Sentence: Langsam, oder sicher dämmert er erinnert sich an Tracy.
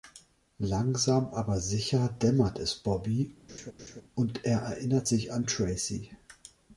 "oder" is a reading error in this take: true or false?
true